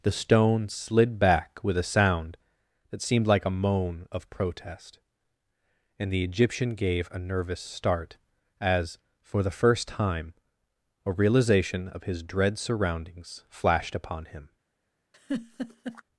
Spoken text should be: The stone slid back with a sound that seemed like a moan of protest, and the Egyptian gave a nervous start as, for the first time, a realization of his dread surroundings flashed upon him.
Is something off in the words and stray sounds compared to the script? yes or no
yes